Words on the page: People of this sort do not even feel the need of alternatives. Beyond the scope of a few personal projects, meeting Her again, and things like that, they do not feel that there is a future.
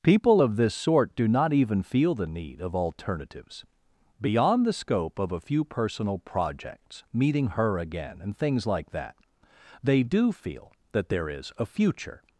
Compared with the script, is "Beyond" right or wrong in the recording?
right